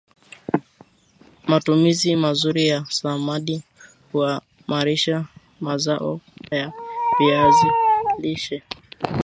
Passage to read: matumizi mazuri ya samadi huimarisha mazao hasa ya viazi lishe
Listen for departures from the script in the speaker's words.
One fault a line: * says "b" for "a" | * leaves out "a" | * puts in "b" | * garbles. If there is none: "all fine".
* leaves out "hasa"